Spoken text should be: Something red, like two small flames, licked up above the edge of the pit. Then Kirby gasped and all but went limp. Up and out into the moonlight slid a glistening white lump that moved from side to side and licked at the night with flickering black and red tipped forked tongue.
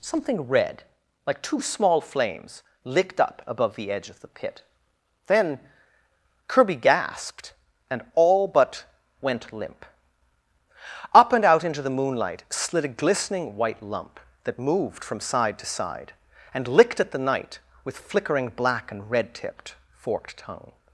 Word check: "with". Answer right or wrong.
right